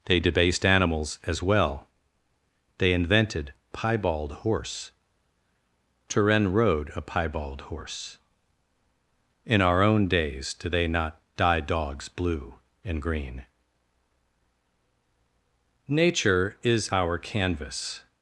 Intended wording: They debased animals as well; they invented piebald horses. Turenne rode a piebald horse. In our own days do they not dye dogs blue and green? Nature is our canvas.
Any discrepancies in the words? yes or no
yes